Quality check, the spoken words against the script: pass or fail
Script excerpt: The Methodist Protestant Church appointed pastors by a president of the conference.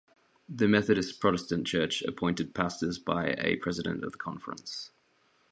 pass